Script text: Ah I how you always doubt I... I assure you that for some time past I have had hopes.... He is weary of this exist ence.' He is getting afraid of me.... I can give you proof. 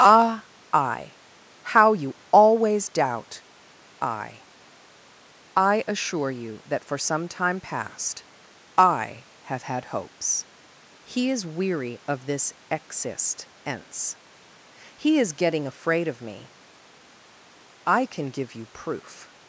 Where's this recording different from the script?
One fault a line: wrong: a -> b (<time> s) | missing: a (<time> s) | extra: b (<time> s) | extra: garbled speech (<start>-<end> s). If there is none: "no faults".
no faults